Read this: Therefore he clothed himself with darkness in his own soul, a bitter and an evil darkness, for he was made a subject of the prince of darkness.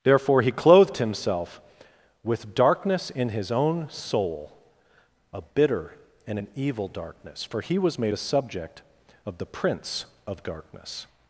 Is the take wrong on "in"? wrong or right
right